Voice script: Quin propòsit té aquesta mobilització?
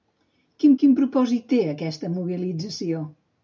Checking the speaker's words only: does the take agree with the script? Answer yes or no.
no